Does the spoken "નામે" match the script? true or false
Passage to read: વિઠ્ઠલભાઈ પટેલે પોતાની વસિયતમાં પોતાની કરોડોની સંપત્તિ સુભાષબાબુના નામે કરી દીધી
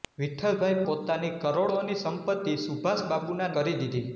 false